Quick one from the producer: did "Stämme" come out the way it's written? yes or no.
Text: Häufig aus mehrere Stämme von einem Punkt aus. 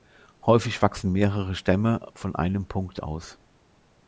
yes